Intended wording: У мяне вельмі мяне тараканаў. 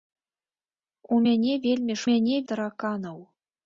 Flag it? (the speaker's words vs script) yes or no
no